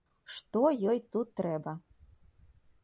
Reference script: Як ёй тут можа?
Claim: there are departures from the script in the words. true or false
true